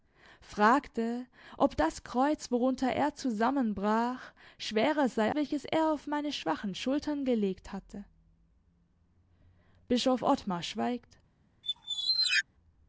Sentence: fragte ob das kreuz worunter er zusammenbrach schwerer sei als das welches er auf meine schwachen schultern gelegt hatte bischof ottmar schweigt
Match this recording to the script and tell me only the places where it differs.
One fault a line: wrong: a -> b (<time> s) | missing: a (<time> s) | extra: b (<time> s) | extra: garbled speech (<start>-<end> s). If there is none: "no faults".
missing: als das (5.3 s)